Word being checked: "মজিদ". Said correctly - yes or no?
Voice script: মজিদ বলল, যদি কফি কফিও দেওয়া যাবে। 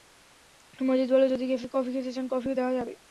yes